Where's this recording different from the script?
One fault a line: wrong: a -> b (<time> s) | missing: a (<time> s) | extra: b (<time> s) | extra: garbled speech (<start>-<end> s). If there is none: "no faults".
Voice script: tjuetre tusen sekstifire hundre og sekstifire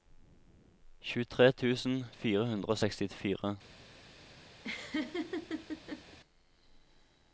wrong: sekstifire -> fire (2.2 s)